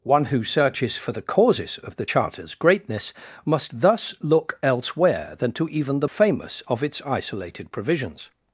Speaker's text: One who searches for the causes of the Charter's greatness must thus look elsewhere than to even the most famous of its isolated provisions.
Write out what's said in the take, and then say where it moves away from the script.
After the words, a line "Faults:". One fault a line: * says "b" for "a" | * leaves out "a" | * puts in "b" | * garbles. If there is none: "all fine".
One who searches for the causes of the Charter's greatness must thus look elsewhere than to even the famous of its isolated provisions.
Faults:
* leaves out "most"